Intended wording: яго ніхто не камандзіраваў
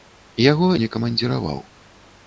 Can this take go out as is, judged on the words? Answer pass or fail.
fail